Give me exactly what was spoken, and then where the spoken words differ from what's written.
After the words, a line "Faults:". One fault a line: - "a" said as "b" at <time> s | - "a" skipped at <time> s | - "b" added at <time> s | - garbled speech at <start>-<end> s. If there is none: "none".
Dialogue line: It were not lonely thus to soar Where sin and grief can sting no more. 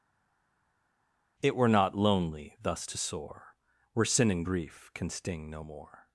It were not lonely thus to soar Where sin and grief can sting no more.
Faults:
none